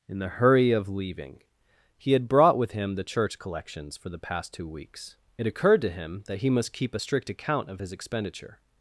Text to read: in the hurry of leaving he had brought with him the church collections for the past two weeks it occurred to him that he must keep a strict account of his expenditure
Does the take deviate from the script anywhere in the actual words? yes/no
no